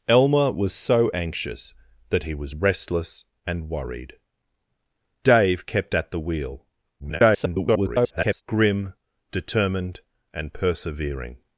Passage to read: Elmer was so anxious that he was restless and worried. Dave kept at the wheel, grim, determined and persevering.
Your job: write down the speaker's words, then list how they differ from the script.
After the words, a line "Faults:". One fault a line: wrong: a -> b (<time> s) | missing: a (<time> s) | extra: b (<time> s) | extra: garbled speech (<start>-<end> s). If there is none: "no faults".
Elmer was so anxious that he was restless and worried. Dave kept at the wheel, [garbled] grim, determined and persevering.
Faults:
extra: garbled speech (7.0-8.4 s)